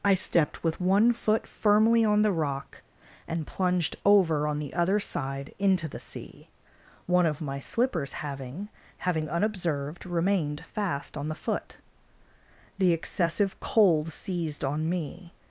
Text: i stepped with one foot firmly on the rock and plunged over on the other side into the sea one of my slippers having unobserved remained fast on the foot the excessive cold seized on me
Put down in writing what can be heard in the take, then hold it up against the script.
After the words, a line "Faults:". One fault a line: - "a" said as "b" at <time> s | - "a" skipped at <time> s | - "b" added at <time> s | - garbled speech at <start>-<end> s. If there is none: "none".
i stepped with one foot firmly on the rock and plunged over on the other side into the sea one of my slippers having having unobserved remained fast on the foot the excessive cold seized on me
Faults:
- "having" added at 9.0 s